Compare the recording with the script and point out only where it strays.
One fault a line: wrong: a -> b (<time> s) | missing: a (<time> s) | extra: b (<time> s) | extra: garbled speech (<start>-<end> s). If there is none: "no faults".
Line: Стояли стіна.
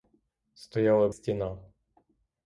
no faults